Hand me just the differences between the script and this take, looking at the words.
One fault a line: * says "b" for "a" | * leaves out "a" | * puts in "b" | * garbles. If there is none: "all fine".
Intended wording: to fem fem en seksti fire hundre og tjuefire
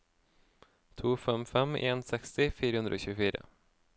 all fine